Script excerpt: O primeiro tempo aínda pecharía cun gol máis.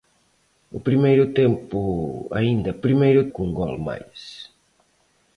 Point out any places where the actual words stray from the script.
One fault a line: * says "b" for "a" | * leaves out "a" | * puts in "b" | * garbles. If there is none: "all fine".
* says "primeiro" for "pecharía"